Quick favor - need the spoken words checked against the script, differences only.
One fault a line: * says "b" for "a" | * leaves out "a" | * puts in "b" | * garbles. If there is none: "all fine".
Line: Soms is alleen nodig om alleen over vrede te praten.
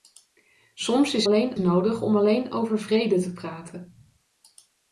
all fine